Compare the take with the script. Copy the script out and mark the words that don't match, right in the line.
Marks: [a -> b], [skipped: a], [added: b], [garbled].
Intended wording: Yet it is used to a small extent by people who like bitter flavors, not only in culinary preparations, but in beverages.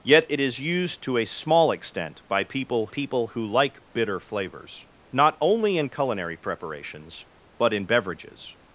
Yet it is used to a small extent by people [added: people] who like bitter flavors, not only in culinary preparations, but in beverages.